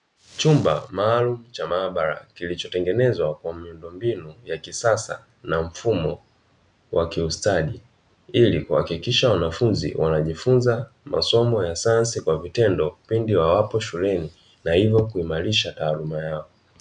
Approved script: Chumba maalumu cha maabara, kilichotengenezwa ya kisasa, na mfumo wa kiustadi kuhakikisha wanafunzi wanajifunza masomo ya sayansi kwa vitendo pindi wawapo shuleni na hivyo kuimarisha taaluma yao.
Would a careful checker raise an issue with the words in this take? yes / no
yes